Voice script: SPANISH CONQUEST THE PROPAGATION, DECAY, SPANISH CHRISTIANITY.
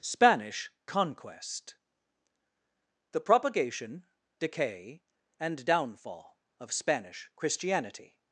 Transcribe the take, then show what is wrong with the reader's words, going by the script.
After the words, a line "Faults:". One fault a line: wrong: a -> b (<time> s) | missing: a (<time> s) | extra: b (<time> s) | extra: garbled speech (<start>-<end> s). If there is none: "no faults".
SPANISH CONQUEST THE PROPAGATION, DECAY, AND DOWNFALL OF SPANISH CHRISTIANITY.
Faults:
extra: AND DOWNFALL OF (5.4 s)